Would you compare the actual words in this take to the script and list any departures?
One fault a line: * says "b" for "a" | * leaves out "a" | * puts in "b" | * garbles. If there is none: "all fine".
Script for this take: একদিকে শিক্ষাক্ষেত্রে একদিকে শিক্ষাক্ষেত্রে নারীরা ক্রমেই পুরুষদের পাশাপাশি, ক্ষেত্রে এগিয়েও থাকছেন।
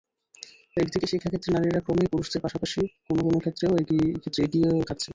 * leaves out "একদিকে শিক্ষাক্ষেত্রে"
* puts in "কোনো কোনো"